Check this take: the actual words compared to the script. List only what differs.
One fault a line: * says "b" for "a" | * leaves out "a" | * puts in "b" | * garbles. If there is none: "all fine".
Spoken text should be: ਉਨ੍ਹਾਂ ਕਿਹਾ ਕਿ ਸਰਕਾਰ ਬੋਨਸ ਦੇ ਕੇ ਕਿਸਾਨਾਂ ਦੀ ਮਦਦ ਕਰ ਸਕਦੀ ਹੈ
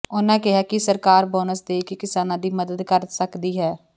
all fine